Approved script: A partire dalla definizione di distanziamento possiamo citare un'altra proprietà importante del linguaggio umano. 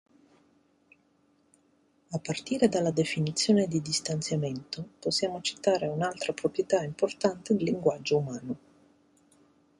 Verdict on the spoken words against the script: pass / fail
fail